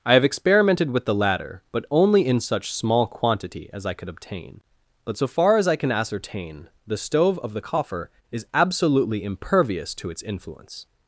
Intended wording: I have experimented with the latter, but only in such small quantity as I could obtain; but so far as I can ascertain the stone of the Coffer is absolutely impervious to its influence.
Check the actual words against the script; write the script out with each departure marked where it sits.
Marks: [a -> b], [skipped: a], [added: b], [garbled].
I have experimented with the latter, but only in such small quantity as I could obtain; but so far as I can ascertain the [stone -> stove] of the Coffer is absolutely impervious to its influence.